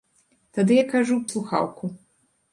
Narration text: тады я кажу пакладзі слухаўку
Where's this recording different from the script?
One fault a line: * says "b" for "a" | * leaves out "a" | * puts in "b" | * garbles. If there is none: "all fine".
* leaves out "пакладзі"